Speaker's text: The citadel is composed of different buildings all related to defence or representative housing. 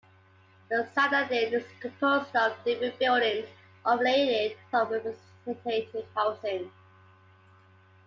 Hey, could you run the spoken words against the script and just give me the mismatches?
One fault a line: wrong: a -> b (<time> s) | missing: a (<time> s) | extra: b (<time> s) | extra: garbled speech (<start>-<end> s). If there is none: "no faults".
missing: to defence (4.6 s)